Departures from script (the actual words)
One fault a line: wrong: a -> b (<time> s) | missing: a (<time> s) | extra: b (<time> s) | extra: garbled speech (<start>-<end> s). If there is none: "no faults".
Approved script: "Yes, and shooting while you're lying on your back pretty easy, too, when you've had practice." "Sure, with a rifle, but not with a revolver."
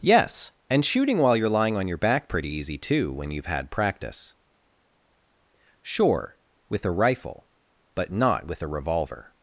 no faults